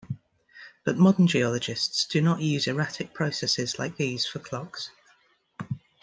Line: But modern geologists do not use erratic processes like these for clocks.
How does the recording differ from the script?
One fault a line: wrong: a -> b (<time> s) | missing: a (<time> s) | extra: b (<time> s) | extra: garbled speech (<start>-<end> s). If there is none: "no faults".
no faults